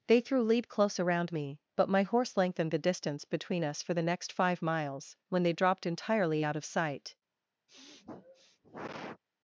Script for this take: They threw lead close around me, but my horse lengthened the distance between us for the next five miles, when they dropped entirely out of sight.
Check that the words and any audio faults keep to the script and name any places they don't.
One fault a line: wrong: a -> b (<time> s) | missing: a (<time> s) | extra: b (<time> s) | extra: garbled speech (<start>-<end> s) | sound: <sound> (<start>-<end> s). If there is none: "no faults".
sound: sniff (7.7-9.2 s)